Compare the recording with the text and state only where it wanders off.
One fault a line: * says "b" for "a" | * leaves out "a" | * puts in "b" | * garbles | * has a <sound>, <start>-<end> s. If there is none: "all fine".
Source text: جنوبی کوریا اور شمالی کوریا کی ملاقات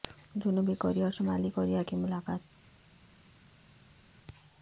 all fine